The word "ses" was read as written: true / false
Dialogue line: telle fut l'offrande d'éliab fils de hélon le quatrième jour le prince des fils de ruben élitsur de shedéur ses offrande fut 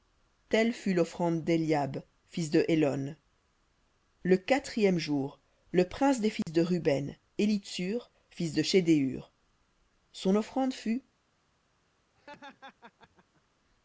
false